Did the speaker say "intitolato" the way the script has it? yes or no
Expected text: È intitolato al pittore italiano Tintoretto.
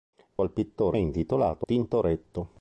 no